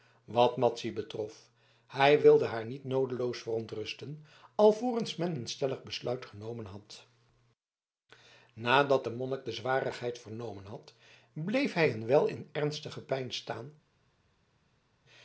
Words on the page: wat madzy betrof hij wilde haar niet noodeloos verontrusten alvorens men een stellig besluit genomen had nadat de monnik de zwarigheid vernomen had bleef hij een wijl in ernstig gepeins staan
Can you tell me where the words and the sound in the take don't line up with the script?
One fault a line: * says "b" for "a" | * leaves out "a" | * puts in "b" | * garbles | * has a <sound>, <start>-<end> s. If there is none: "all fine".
all fine